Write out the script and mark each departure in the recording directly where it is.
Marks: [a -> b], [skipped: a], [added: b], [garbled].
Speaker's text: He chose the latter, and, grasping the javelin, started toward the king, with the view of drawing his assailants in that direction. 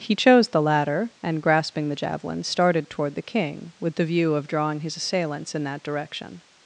He chose the latter, and, grasping the javelin, started toward the king, with the view of drawing his assailants in that direction.